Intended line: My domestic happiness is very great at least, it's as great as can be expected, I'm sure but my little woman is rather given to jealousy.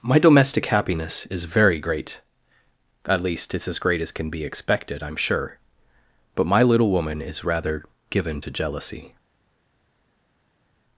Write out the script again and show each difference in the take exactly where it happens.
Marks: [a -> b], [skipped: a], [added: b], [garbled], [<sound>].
My domestic happiness is very great at least, it's as great as can be expected, I'm sure but my little woman is rather given to jealousy.